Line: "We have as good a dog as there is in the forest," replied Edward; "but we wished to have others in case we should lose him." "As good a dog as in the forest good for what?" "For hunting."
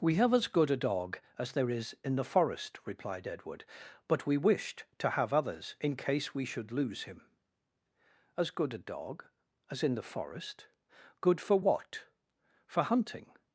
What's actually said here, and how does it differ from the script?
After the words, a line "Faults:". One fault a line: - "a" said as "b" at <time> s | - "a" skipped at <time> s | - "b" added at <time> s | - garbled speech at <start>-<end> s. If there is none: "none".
"We have as good a dog as there is in the forest," replied Edward; "but we wished to have others in case we should lose him." "As good a dog as in the forest good for what?" "For hunting."
Faults:
none